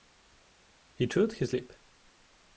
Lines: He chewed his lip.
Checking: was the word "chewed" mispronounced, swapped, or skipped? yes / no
no